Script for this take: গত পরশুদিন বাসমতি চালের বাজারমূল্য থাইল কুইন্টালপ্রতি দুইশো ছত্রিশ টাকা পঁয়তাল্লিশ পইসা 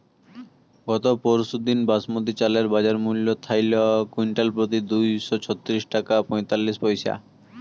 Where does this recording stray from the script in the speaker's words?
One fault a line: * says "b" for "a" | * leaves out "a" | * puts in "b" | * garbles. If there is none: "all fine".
all fine